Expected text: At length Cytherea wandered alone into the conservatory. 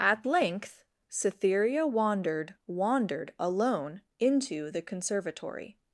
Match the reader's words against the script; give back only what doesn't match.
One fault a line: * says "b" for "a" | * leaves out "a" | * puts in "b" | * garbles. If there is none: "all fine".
* puts in "wandered"